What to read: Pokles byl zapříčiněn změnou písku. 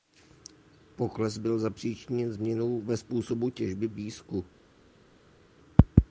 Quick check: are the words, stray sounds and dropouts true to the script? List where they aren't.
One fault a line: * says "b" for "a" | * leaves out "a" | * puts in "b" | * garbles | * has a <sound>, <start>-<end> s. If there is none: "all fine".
* puts in "ve způsobu těžby"